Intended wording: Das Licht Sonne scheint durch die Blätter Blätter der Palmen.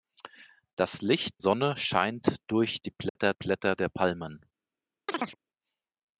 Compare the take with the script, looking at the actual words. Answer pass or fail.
pass